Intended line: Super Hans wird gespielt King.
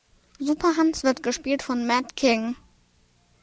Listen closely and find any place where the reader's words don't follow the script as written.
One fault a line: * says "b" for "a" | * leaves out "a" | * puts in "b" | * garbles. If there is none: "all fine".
* puts in "von Matt"